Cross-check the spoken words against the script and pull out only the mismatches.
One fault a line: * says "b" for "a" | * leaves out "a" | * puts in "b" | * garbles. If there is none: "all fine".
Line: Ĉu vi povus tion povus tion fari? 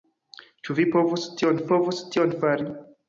all fine